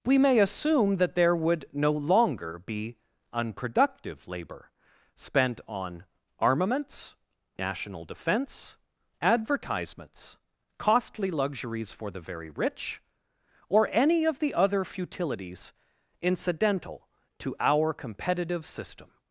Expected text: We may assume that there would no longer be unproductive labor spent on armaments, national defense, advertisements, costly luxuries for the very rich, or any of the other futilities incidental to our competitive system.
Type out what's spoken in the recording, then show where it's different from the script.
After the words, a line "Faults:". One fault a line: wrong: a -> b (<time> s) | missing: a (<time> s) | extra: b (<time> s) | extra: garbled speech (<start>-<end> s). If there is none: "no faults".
We may assume that there would no longer be unproductive labor spent on armaments, national defense, advertisements, costly luxuries for the very rich, or any of the other futilities incidental to our competitive system.
Faults:
no faults